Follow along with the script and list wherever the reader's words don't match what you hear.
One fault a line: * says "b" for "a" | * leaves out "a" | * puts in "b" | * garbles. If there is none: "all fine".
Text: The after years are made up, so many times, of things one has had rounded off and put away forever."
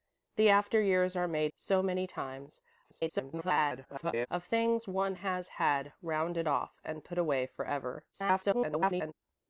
* leaves out "up"
* garbles
* garbles